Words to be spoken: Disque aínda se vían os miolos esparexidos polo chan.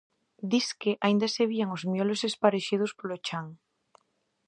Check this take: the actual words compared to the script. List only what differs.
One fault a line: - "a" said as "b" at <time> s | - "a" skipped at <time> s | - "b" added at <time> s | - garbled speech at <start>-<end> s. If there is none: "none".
none